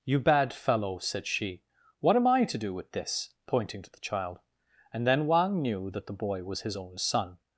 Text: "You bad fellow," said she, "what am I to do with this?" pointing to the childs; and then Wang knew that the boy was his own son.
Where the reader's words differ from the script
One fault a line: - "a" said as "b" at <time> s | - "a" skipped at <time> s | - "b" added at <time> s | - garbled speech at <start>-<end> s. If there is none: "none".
- "childs" said as "child" at 4.0 s